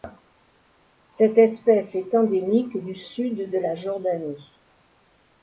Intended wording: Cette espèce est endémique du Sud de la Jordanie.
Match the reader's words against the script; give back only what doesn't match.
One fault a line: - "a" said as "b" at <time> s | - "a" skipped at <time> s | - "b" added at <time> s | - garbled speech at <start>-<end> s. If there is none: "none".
none